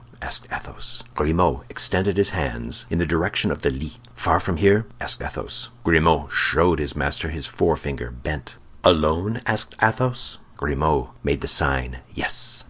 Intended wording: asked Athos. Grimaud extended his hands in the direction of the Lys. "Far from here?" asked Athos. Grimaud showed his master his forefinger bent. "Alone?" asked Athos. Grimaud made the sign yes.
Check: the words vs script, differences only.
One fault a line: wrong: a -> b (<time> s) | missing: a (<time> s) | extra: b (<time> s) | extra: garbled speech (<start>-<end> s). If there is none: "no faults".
no faults